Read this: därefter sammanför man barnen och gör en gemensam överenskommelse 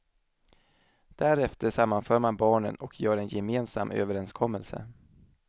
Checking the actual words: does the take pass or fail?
pass